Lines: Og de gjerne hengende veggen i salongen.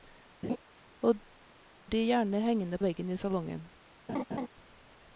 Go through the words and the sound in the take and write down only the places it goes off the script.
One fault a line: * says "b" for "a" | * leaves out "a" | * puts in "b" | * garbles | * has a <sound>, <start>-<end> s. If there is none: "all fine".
* has a laugh, 0.4-0.6 s
* has a laugh, 4.1-4.5 s